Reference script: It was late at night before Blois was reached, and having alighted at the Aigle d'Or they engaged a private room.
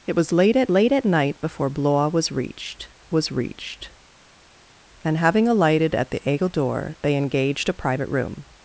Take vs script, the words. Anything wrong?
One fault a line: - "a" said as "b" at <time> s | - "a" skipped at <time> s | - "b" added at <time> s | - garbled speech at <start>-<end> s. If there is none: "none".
- "late at" added at 0.7 s
- "was reached" added at 3.1 s